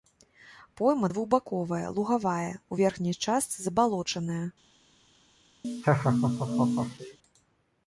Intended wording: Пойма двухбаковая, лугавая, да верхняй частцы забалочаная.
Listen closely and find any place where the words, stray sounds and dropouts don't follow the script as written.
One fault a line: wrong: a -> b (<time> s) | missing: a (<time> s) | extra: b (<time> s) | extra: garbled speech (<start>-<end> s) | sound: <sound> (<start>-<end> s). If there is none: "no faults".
wrong: да -> у (2.7 s)
sound: laugh (5.6-7.2 s)